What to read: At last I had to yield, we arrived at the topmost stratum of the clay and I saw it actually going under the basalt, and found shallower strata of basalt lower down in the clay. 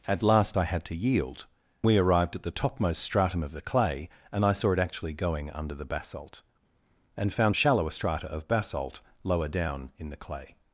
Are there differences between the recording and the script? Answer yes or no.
no